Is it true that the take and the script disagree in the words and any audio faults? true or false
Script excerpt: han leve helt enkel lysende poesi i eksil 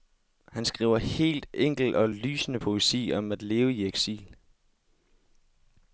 true